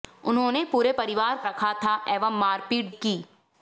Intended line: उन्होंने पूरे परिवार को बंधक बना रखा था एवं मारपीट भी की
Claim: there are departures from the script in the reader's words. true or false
true